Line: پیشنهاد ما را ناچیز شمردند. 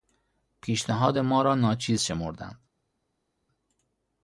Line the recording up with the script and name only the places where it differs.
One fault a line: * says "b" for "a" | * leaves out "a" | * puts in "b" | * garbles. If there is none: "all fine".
all fine